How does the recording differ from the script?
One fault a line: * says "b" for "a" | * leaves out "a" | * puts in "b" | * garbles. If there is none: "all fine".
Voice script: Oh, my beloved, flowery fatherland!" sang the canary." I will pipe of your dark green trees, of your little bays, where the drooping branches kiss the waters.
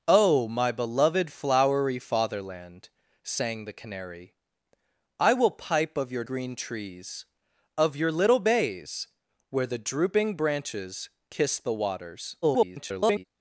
* leaves out "dark"
* garbles